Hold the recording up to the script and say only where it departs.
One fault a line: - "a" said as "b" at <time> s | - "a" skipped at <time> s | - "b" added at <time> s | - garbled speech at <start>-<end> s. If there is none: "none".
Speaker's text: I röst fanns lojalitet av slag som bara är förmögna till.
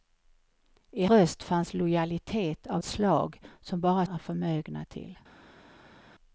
none